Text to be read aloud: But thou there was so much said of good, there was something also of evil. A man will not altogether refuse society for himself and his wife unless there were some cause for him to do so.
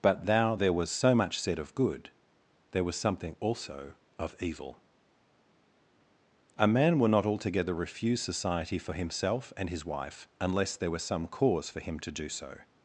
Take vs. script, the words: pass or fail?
pass